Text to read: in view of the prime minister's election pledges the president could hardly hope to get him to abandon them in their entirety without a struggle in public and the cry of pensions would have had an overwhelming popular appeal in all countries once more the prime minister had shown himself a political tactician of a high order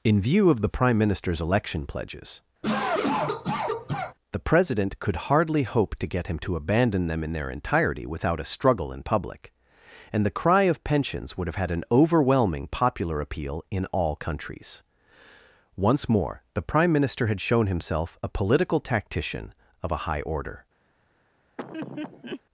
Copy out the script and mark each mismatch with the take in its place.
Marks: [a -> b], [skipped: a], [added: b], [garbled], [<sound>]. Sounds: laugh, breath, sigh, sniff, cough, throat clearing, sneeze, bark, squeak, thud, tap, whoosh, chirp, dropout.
in view of the prime minister's election pledges [cough] the president could hardly hope to get him to abandon them in their entirety without a struggle in public and the cry of pensions would have had an overwhelming popular appeal in all countries once more the prime minister had shown himself a political tactician of a high order [laugh]